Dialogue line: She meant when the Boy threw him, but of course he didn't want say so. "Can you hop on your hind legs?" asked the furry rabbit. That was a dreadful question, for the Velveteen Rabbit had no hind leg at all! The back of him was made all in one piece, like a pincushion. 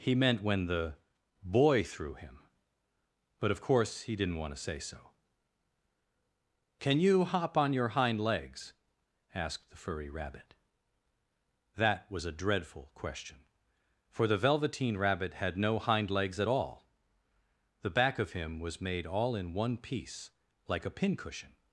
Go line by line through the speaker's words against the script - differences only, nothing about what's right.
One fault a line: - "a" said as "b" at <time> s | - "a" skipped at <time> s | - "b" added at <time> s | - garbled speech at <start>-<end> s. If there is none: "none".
- "She" said as "He" at 0.0 s
- "to" added at 4.5 s
- "leg" said as "legs" at 16.1 s